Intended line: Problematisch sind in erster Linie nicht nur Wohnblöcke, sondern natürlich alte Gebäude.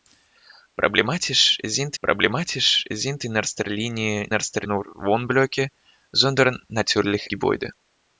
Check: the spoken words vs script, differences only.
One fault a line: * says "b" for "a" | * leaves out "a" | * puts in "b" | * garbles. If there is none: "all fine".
* puts in "problematisch sind"
* says "erster" for "nicht"
* leaves out "alte"